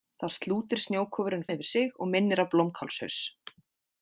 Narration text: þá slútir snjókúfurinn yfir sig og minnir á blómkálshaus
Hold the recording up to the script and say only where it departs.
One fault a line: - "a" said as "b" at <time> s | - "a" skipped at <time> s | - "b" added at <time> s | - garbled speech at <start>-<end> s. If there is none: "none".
none